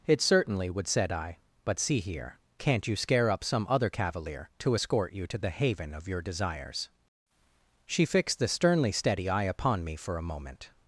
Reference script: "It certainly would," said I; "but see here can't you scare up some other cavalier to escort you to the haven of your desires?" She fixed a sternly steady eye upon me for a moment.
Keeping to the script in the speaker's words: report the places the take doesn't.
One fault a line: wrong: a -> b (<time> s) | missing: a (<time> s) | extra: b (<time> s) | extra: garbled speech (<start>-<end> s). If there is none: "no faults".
wrong: a -> the (8.4 s)